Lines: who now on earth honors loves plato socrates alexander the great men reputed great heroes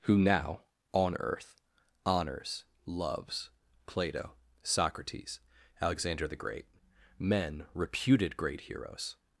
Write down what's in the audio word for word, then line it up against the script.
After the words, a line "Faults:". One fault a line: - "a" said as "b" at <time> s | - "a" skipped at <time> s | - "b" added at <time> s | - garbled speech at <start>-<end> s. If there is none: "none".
who now on earth honors loves plato socrates alexander the great men reputed great heroes
Faults:
none